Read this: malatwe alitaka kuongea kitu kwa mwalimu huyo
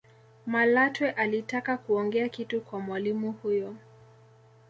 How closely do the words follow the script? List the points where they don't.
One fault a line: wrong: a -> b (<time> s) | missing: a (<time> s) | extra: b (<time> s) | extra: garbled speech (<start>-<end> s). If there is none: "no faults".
no faults